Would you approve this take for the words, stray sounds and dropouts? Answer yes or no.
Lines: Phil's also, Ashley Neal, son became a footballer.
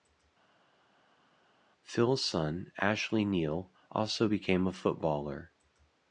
no